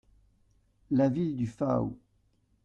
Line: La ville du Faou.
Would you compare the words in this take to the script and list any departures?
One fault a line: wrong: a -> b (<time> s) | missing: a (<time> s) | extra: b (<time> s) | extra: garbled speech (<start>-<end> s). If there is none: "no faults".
no faults